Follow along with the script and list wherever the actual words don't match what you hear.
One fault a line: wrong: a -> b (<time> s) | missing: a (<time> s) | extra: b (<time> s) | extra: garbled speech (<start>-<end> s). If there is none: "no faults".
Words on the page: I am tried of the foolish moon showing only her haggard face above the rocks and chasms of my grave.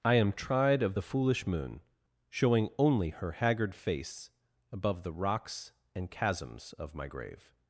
no faults